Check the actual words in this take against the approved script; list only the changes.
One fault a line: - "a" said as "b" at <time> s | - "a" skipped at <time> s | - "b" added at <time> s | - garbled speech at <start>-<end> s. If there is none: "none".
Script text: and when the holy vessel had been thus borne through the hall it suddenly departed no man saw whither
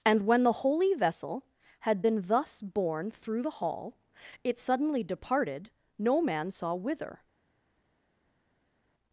none